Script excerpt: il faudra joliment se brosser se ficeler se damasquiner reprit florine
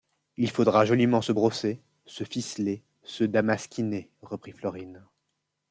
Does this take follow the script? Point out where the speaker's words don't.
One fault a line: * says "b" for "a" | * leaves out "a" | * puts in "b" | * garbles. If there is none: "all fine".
all fine